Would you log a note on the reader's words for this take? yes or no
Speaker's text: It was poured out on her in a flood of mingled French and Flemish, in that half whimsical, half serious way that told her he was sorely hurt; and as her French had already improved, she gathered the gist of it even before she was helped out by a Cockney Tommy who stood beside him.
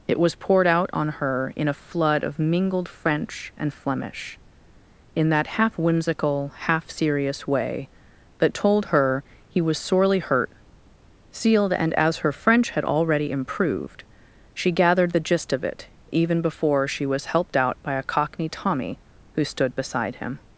yes